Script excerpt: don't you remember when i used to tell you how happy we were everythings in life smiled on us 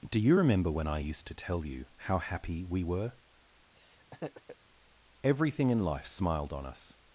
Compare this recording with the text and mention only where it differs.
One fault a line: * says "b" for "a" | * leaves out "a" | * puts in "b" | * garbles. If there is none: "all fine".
* says "do" for "don't"
* says "everything" for "everythings"